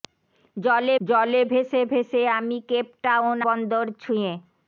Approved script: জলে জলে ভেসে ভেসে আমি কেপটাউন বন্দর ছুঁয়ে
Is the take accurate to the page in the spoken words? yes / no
yes